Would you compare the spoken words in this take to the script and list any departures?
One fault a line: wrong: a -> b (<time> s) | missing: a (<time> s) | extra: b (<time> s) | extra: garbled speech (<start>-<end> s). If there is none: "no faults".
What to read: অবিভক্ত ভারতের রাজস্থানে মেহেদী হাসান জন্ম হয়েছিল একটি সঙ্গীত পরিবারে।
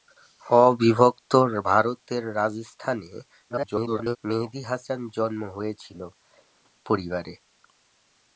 extra: garbled speech (3.5-4.2 s)
missing: একটি সঙ্গীত (6.0 s)